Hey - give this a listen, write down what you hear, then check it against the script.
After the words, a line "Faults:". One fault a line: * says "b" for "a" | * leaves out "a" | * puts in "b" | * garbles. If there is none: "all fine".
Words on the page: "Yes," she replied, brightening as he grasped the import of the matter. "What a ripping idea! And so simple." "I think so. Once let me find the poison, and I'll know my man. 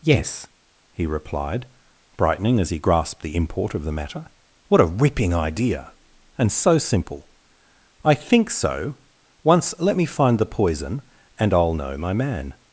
"Yes," he replied, brightening as he grasped the import of the matter. "What a ripping idea! And so simple." "I think so. Once let me find the poison, and I'll know my man.
Faults:
* says "he" for "she"